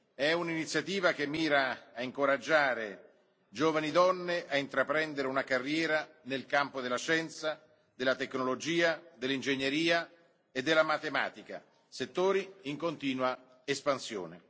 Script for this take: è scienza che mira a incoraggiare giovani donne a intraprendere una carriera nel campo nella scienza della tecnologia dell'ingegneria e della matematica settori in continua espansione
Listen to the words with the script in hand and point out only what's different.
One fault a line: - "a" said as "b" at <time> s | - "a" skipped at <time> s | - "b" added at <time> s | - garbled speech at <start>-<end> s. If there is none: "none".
- "scienza" said as "un'iniziativa" at 0.3 s
- "nella" said as "della" at 6.8 s